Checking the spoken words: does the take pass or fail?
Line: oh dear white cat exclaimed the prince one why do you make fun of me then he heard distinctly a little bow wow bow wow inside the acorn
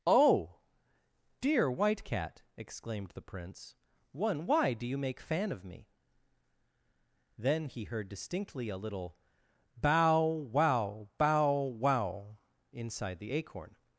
fail